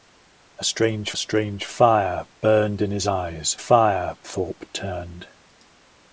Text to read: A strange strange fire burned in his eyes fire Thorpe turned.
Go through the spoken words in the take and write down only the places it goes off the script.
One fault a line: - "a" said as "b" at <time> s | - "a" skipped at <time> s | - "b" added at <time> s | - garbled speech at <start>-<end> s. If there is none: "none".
none